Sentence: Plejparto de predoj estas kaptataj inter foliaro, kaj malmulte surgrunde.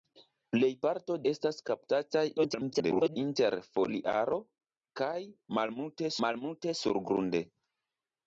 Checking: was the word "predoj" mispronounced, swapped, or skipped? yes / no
yes